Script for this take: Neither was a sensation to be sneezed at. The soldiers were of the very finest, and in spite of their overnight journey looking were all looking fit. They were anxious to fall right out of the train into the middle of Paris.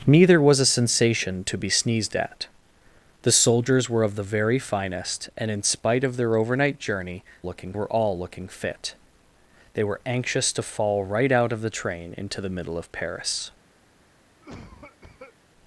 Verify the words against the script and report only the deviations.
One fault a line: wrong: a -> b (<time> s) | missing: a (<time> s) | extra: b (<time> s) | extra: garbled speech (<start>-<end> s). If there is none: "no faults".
no faults